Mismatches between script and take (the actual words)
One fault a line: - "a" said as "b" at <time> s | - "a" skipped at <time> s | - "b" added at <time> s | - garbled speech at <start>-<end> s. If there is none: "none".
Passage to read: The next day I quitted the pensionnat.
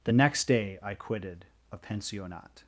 - "the" said as "a" at 1.7 s